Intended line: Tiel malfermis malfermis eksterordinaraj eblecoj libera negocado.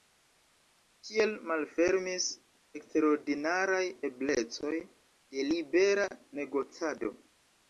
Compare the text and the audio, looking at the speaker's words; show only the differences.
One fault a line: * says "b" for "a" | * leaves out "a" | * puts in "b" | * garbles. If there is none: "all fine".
* leaves out "malfermis"
* puts in "de"